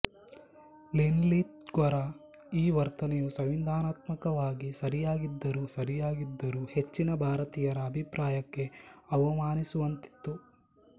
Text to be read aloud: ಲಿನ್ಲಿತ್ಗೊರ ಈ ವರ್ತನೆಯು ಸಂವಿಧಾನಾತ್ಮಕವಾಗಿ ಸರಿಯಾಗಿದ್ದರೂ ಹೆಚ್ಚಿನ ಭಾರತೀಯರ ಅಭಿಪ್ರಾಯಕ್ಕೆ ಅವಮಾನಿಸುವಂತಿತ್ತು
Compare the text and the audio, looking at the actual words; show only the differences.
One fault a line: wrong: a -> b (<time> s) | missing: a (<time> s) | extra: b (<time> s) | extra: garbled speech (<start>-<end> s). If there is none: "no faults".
extra: ಸರಿಯಾಗಿದ್ದರೂ (5.7 s)